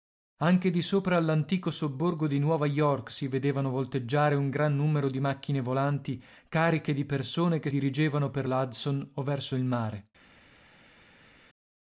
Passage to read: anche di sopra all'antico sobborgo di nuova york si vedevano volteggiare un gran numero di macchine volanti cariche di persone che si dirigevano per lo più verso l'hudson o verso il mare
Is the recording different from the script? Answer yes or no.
yes